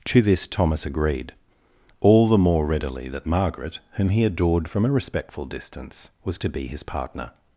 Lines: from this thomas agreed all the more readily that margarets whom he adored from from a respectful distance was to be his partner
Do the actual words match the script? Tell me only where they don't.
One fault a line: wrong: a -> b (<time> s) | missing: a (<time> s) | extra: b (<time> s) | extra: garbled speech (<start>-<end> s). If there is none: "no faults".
wrong: from -> to (0.1 s)
wrong: margarets -> margaret (3.3 s)
missing: from (4.8 s)